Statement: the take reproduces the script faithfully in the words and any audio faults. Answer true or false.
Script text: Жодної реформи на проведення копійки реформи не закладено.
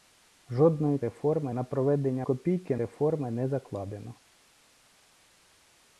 true